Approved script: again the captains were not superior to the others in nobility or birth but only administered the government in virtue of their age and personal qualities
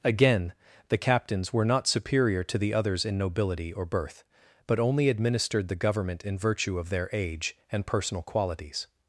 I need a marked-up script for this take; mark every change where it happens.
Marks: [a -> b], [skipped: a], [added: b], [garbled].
again the captains were not superior to the others in nobility or birth but only administered the government in virtue of their age and personal qualities